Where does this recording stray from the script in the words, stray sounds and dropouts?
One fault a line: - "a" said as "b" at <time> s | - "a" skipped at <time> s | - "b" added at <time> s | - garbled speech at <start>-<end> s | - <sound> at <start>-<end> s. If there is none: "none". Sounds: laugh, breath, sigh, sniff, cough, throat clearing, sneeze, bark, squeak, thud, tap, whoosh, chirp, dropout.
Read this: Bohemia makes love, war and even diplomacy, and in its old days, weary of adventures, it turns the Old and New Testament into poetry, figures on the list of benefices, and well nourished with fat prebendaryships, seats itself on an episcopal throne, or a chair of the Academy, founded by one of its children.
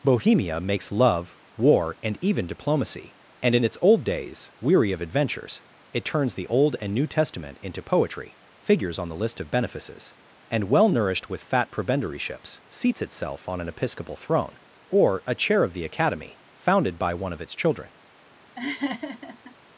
- laugh at 18.6-19.5 s